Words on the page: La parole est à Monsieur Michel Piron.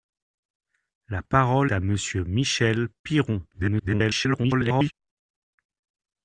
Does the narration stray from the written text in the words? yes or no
yes